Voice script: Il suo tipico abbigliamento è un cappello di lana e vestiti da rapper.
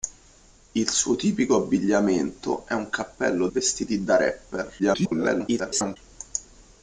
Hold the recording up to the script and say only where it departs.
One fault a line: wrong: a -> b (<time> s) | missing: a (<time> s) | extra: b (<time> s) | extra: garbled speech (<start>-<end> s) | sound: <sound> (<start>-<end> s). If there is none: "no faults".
missing: di lana e (3.5 s)
extra: garbled speech (4.8-6.0 s)